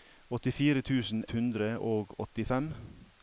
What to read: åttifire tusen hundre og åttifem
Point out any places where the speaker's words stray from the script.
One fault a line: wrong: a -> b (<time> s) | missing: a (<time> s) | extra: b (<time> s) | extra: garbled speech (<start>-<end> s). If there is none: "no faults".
no faults